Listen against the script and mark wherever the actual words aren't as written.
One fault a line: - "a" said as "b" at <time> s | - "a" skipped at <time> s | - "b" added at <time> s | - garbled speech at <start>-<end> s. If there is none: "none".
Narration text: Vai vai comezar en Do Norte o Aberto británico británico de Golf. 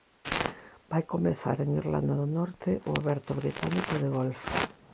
- "vai" skipped at 1.0 s
- "Irlanda" added at 1.8 s
- "británico" skipped at 3.9 s